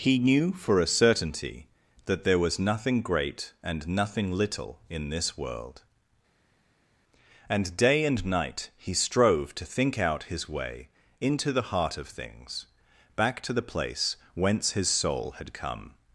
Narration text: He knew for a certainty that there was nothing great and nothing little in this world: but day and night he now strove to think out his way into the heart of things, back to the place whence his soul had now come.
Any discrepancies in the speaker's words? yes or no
yes